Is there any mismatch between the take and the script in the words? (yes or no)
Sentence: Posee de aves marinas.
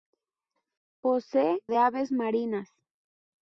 no